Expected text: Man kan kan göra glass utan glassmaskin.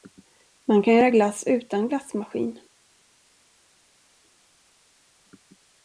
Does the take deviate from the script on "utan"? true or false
false